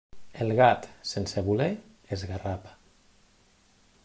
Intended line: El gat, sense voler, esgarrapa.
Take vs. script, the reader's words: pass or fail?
pass